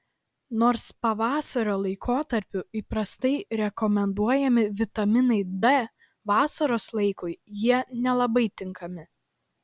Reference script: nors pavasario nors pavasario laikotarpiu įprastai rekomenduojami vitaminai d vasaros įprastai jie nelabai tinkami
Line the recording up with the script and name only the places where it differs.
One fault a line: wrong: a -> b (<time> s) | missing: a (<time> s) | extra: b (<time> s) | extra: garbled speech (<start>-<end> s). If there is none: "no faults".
missing: nors pavasario (1.7 s)
wrong: įprastai -> laikui (7.0 s)